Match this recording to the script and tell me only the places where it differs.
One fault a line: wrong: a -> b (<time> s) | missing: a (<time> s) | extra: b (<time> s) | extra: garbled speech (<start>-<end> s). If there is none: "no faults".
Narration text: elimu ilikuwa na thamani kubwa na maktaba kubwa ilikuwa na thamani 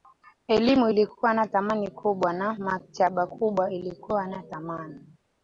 no faults